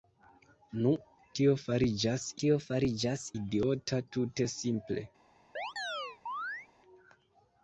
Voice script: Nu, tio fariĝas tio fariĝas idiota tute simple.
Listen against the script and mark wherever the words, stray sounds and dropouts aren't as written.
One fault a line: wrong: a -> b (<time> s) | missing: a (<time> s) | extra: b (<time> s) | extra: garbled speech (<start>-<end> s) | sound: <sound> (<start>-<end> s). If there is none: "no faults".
sound: chirp (5.6-6.7 s)